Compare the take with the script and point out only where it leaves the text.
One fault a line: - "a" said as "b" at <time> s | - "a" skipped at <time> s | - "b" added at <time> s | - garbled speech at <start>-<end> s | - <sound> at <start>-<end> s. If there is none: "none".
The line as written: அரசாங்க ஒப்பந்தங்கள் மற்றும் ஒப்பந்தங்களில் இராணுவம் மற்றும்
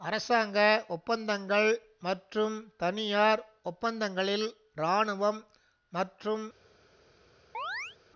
- "தனியார்" added at 2.8 s
- chirp at 7.5-8.0 s